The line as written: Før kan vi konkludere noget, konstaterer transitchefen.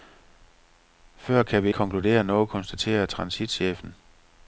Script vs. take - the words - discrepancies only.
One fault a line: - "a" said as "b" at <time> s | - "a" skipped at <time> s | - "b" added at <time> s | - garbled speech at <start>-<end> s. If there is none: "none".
none